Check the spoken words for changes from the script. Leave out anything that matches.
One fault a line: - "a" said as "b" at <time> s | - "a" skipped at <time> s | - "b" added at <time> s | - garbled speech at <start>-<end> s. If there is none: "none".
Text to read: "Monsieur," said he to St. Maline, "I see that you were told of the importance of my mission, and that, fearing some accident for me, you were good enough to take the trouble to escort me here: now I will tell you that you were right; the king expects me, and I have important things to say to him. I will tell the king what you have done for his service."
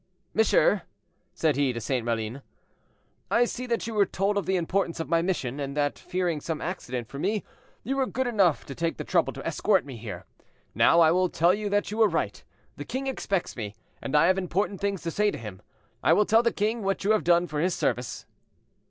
none